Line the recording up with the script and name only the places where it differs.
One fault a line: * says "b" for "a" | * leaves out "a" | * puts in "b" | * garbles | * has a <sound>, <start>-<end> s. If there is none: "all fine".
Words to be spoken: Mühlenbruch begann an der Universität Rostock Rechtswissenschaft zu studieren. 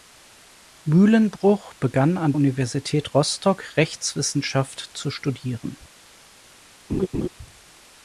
* leaves out "der"
* has a laugh, 6.9-7.3 s